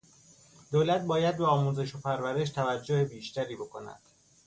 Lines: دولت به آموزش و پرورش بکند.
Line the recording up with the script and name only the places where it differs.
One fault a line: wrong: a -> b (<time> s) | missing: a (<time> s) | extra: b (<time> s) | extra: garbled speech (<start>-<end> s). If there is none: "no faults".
extra: باید (1.0 s)
extra: توجه بیشتری (2.5 s)